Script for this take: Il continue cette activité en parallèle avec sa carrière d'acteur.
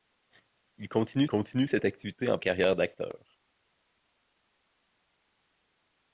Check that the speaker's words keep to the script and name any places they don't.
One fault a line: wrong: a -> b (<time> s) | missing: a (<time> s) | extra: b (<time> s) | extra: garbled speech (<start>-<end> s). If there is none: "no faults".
extra: continue (1.3 s)
missing: parallèle avec sa (2.4 s)